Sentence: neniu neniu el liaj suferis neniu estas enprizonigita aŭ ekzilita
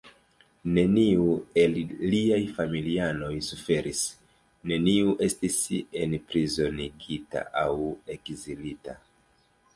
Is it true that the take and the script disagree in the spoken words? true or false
true